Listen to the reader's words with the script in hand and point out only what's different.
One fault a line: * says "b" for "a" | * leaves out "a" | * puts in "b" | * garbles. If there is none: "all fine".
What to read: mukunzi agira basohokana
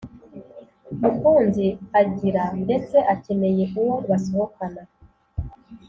* puts in "ndetse akeneye uwo"